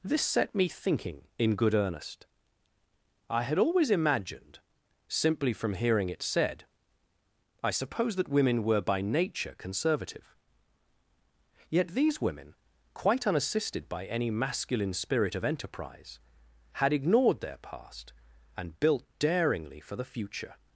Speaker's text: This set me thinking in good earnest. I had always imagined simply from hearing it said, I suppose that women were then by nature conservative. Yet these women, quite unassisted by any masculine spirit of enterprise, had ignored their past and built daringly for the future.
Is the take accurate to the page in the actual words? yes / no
no